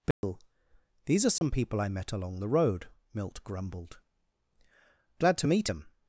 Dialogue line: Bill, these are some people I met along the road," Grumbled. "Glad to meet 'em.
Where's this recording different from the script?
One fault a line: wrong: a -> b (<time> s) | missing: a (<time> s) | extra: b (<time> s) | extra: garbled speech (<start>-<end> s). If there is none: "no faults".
extra: Milt (3.1 s)